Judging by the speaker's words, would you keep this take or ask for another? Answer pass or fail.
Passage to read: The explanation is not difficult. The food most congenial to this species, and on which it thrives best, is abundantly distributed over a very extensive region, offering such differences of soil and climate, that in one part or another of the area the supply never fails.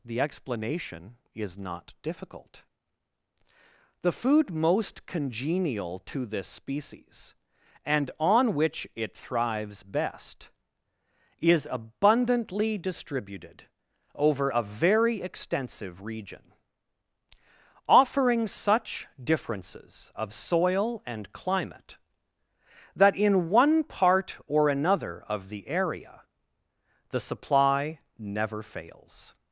pass